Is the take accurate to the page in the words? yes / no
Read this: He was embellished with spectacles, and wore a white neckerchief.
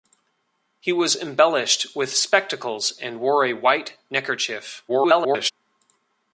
no